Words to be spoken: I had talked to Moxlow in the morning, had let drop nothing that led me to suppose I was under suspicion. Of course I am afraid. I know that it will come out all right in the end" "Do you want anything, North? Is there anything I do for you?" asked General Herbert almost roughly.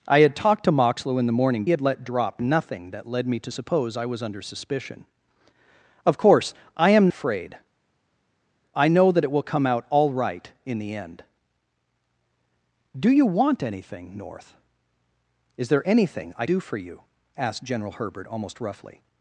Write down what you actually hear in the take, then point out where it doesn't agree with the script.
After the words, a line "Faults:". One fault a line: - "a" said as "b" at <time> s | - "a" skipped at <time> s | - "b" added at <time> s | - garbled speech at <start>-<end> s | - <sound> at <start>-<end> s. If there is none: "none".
I had talked to Moxlow in the morning, had let drop nothing that led me to suppose I was under suspicion. Of course I am afraid. I know that it will come out all right in the end" "Do you want anything, North? Is there anything I do for you?" asked General Herbert almost roughly.
Faults:
none